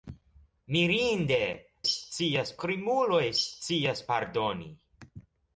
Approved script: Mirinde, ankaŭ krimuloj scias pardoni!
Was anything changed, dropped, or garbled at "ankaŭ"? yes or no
yes